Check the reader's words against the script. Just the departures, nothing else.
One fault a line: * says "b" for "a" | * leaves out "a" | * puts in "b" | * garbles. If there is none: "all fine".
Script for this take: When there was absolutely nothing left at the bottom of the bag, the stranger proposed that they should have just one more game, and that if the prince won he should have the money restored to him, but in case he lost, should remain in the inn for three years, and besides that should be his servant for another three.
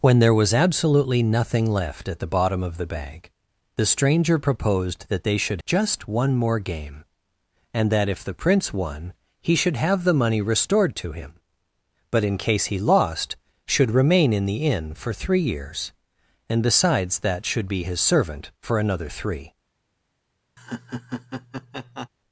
* leaves out "have"